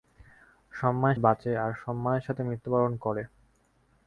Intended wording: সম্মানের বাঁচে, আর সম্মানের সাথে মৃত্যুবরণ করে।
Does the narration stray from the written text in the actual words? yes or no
no